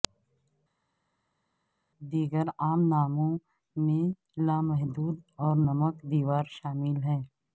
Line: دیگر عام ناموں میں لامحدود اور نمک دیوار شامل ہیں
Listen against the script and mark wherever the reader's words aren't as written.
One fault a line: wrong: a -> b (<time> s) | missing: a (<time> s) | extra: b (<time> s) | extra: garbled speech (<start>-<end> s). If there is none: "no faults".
no faults